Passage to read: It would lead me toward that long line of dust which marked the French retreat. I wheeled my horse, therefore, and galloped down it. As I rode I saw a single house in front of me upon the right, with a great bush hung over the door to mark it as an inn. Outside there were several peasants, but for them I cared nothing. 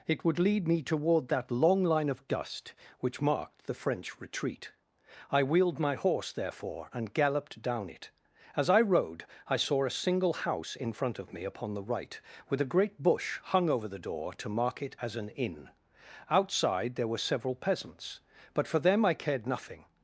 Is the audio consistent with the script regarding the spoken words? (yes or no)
yes